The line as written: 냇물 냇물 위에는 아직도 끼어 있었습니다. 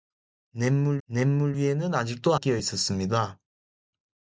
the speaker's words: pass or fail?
pass